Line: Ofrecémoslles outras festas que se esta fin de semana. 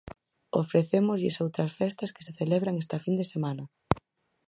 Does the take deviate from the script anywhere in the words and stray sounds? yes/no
yes